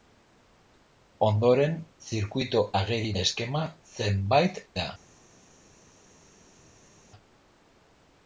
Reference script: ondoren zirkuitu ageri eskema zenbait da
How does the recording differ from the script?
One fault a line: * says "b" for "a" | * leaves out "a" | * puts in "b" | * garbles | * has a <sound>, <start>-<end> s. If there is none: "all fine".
all fine